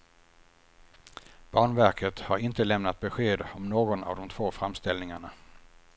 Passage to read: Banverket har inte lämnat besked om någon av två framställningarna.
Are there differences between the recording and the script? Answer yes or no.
yes